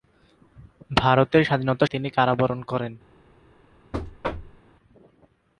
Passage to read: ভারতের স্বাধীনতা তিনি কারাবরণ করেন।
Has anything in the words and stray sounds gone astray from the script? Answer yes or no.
yes